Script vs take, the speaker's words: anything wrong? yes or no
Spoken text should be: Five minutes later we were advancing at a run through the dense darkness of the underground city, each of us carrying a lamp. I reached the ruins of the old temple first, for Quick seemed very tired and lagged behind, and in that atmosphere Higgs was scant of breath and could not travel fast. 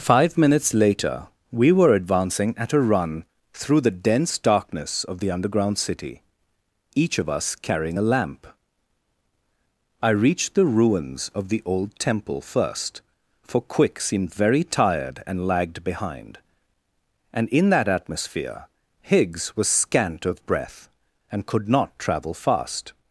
no